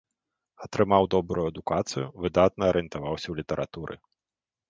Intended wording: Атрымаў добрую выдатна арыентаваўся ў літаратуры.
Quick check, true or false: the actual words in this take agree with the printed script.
false